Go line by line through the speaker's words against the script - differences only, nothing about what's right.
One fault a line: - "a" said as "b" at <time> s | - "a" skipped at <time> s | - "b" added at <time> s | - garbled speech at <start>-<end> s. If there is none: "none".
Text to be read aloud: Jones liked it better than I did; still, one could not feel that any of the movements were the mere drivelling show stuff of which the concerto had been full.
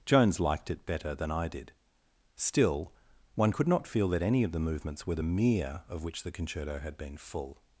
- "drivelling show stuff" skipped at 5.8 s